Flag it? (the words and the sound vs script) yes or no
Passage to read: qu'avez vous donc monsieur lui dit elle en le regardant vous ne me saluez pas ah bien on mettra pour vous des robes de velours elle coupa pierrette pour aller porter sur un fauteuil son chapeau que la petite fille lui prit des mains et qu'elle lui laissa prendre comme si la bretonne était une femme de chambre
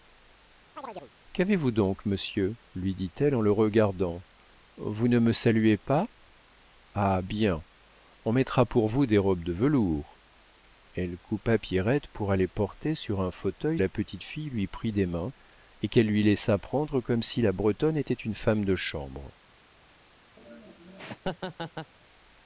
yes